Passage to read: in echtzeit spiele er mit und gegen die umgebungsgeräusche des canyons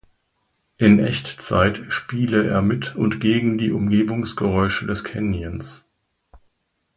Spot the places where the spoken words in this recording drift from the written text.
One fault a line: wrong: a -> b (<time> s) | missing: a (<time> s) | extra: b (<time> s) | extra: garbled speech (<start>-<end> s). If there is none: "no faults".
no faults